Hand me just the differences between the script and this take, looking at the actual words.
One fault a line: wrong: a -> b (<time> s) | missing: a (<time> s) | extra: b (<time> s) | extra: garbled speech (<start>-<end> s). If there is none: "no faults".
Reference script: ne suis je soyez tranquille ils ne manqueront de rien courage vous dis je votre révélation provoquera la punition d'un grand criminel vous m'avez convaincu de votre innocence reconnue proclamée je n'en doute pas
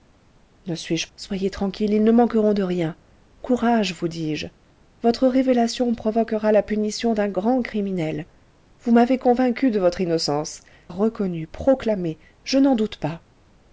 no faults